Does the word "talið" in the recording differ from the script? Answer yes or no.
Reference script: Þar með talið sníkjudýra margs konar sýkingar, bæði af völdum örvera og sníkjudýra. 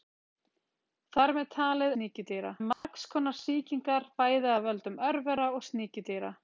no